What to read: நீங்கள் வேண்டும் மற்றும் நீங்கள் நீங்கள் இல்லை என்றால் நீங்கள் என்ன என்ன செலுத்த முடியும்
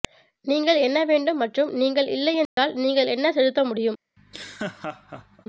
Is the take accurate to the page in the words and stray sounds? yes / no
no